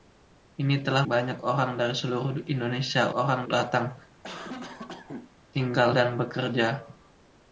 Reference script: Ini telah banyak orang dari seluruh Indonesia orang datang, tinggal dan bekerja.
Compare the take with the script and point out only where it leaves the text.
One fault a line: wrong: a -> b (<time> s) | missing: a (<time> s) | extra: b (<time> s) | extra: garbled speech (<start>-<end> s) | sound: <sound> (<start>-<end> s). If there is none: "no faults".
sound: cough (4.2-5.3 s)